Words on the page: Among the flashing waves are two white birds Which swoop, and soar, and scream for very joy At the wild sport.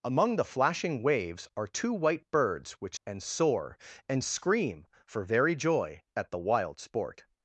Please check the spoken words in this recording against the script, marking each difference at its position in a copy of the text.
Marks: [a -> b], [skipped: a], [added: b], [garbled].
Among the flashing waves are two white birds Which [skipped: swoop,] and soar, and scream for very joy At the wild sport.